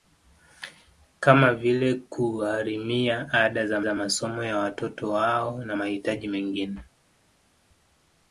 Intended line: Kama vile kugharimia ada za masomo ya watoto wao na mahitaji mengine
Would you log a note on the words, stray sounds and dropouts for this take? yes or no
yes